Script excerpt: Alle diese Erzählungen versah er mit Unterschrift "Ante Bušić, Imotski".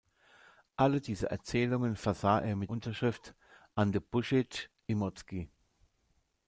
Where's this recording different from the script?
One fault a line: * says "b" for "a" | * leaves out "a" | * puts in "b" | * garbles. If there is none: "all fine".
all fine